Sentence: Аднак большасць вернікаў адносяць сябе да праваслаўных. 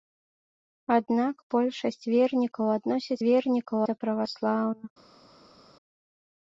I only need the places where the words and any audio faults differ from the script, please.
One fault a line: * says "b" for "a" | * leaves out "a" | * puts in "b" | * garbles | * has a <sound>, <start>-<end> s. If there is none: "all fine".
* says "вернікаў" for "сябе"